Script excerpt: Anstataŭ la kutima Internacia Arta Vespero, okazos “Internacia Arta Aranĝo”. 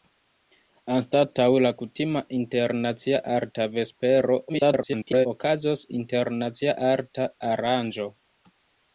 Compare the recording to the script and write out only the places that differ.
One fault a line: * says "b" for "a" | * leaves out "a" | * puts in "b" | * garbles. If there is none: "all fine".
* garbles